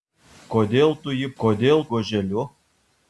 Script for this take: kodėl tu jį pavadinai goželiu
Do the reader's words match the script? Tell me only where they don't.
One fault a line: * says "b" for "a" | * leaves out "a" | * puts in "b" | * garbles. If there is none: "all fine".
* says "kodėl" for "pavadinai"